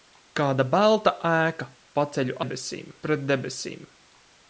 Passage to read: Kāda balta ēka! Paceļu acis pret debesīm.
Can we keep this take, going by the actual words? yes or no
no